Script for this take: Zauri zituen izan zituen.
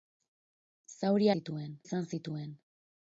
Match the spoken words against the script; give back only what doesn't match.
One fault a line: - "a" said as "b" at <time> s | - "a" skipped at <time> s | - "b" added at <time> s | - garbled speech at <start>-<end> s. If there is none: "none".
none